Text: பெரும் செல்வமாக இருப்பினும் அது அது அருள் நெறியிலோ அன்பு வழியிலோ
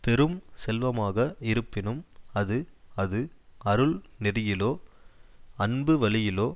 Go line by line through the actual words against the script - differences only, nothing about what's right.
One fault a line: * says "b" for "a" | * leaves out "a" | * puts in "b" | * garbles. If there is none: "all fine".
all fine